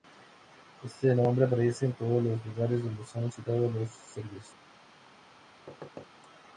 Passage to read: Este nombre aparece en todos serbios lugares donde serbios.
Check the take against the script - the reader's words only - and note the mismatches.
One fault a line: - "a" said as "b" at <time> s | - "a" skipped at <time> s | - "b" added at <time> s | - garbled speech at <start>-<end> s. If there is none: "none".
- "serbios" said as "los" at 2.2 s
- "son citados los" added at 3.0 s